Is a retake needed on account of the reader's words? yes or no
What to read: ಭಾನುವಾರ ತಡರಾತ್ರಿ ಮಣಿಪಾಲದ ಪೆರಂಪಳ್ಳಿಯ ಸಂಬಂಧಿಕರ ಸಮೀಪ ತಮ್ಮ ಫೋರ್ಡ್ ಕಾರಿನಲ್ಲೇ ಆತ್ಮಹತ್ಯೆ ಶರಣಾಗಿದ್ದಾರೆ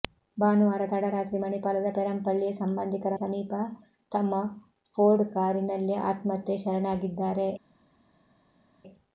no